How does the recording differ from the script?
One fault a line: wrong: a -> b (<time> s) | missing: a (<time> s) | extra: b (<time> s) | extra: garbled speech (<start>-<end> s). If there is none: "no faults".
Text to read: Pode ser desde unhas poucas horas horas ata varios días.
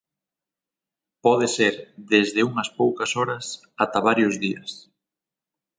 missing: horas (3.5 s)